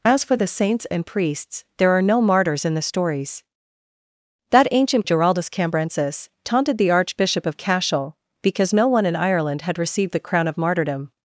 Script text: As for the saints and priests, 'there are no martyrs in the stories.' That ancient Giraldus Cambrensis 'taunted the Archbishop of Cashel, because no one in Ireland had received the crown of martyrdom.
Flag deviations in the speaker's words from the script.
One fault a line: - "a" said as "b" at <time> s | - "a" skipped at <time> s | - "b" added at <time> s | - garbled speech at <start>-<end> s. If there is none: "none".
none